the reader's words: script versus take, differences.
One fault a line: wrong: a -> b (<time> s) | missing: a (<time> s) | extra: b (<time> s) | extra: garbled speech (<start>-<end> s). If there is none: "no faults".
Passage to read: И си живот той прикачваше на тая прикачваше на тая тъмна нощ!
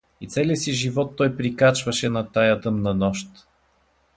extra: целия (0.3 s)
missing: прикачваше на тая (2.7 s)